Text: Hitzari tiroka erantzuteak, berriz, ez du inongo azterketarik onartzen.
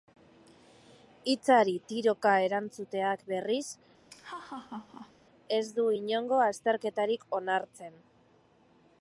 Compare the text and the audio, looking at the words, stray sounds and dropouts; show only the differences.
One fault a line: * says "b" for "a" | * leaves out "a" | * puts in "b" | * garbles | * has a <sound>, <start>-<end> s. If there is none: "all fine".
* has a laugh, 4.1-5.1 s